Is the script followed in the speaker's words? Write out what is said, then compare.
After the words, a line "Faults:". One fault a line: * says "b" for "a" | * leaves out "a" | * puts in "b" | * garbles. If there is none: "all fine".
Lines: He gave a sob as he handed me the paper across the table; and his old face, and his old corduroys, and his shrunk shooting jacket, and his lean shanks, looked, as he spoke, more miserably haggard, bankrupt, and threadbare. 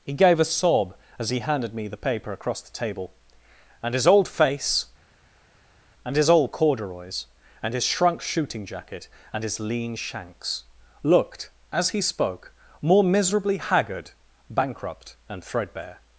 He gave a sob as he handed me the paper across the table; and his old face, and his old corduroys, and his shrunk shooting jacket, and his lean shanks, looked, as he spoke, more miserably haggard, bankrupt, and threadbare.
Faults:
all fine